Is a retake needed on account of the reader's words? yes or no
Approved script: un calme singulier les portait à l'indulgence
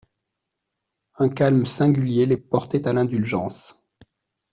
no